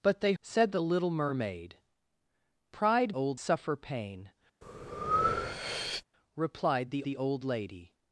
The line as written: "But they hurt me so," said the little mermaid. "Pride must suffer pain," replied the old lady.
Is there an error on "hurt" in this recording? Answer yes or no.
yes